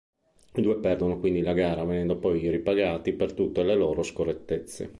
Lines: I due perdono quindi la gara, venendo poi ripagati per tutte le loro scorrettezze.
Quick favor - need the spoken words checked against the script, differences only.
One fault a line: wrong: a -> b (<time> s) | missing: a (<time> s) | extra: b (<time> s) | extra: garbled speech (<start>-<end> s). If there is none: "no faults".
no faults